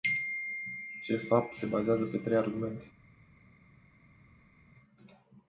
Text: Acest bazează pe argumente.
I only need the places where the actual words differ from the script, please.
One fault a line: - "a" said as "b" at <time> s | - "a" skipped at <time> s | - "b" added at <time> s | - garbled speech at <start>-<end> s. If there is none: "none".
- "fapt se" added at 1.2 s
- "trei" added at 2.2 s